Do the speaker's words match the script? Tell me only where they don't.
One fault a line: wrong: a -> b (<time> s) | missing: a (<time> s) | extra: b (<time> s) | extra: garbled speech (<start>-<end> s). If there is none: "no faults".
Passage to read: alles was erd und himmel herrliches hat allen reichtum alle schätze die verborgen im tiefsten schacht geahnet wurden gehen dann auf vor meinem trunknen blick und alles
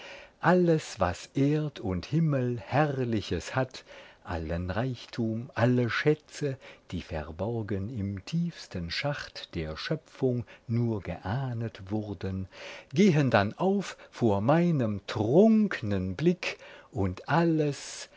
extra: der schöpfung nur (9.6 s)